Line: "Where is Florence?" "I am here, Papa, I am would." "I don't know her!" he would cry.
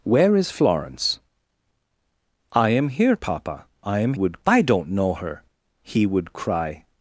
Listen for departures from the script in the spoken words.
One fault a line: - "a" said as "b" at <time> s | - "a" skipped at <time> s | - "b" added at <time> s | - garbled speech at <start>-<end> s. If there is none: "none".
none